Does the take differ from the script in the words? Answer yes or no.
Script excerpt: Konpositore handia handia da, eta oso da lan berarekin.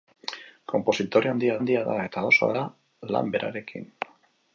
no